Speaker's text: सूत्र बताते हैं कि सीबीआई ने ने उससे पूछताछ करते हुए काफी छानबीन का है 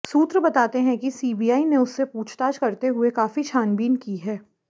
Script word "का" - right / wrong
wrong